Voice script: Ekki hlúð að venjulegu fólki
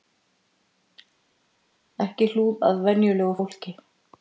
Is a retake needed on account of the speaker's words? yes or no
no